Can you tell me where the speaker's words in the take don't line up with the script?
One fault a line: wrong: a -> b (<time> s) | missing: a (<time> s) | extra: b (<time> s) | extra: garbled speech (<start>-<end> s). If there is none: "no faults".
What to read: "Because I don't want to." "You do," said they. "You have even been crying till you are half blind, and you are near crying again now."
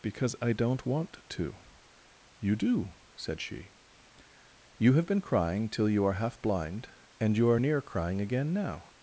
wrong: they -> she (3.4 s)
missing: even (5.0 s)